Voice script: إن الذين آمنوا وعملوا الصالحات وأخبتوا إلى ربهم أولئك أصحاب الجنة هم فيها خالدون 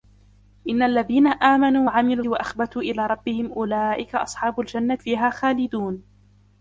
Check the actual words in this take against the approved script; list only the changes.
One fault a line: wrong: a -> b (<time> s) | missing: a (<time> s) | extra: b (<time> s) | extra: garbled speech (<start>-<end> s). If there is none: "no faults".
missing: الصالحات (2.2 s)
missing: هم (5.0 s)